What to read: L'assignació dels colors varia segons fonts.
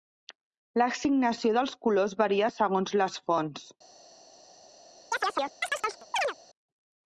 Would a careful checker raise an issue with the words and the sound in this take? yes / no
yes